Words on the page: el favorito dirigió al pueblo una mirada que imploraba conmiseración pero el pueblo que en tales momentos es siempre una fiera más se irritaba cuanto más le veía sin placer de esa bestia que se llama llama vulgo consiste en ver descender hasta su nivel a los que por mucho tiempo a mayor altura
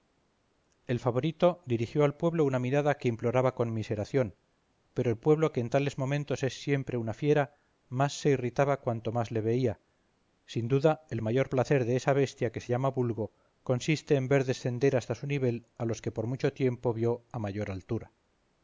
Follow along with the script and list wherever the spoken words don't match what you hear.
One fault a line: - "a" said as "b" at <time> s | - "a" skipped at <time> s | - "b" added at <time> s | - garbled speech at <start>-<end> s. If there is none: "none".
- "duda el mayor" added at 10.7 s
- "llama" skipped at 12.9 s
- "vio" added at 16.9 s